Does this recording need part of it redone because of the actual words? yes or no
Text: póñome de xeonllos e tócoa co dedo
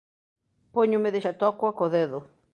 yes